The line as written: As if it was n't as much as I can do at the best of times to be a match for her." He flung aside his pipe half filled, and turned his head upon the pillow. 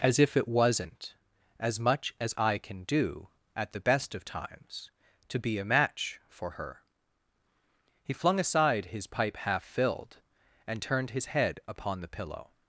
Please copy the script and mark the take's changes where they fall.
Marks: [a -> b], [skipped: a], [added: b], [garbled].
As if it was n't as much as I can do at the best of times to be a match for her." He flung aside his pipe half filled, and turned his head upon the pillow.